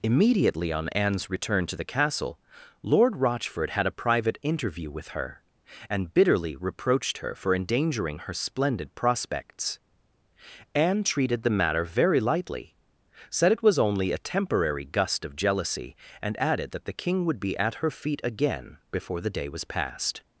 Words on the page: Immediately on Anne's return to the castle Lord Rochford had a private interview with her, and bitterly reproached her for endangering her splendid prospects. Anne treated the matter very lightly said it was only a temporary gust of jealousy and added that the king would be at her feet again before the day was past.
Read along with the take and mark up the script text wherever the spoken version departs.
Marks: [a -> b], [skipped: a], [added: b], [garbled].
Immediately on Anne's return to the castle Lord Rochford had a private interview with her, and bitterly reproached her for endangering her splendid prospects. Anne treated the matter very lightly said it was only a temporary gust of jealousy and added that the king would be at her feet again before the day was past.